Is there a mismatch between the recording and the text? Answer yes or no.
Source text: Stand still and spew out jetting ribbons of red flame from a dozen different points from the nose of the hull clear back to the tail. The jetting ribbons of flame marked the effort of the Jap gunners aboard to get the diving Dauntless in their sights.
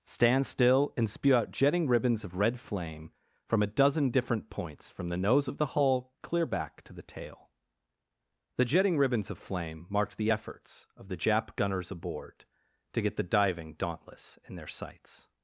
yes